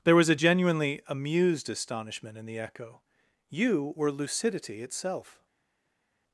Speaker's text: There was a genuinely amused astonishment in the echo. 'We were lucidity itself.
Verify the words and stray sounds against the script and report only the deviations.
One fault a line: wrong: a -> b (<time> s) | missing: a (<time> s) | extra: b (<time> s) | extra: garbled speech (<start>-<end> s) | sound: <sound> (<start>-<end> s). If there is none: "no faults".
wrong: We -> You (3.5 s)